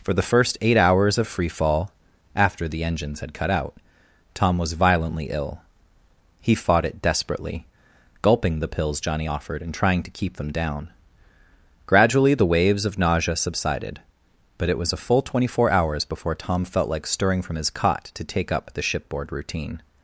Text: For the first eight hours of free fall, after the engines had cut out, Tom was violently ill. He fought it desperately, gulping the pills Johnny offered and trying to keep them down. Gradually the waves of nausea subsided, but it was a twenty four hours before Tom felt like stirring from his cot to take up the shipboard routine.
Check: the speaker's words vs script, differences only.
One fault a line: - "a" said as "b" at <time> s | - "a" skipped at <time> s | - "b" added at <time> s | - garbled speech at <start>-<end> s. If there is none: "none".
- "full" added at 15.0 s